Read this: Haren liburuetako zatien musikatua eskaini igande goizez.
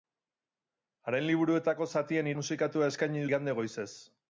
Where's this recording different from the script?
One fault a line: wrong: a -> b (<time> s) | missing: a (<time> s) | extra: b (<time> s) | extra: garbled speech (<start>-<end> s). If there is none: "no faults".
no faults